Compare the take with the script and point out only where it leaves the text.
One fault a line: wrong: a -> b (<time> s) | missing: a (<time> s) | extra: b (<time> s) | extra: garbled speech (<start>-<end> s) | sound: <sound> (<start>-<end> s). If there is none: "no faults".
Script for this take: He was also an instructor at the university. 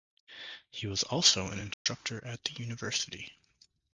sound: dropout (1.7-1.9 s)